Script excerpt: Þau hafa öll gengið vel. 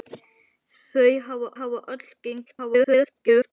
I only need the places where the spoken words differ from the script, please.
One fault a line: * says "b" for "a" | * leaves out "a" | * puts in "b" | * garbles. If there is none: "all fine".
* puts in "hafa"
* garbles